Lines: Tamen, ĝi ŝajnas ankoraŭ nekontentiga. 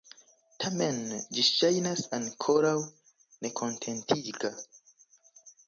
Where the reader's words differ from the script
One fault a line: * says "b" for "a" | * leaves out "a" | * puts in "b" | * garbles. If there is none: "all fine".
all fine